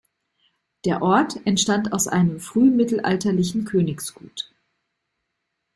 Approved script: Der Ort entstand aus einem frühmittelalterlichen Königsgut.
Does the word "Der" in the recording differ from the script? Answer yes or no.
no